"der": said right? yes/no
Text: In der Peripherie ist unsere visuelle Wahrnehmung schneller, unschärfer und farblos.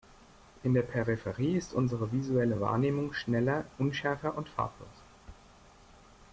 yes